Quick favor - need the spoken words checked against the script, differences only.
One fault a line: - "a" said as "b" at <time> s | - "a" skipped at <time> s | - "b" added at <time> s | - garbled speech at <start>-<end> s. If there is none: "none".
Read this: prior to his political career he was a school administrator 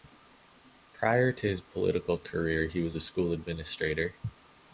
none